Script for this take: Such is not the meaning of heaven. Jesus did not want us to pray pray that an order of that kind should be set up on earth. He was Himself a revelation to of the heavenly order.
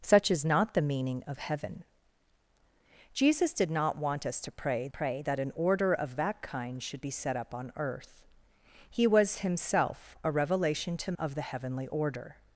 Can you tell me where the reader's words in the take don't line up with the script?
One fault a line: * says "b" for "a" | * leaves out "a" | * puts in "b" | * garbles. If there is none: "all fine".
all fine